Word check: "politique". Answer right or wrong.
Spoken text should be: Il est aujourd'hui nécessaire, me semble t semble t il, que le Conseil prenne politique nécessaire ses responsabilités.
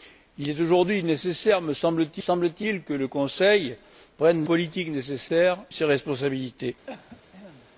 right